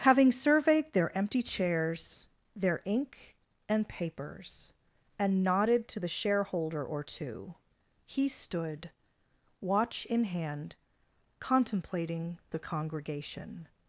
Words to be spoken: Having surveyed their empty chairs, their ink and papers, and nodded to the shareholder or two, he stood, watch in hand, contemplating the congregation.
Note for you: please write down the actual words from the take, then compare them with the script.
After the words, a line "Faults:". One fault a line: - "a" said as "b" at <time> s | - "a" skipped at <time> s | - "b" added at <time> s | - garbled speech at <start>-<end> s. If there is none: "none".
Having surveyed their empty chairs, their ink and papers, and nodded to the shareholder or two, he stood, watch in hand, contemplating the congregation.
Faults:
none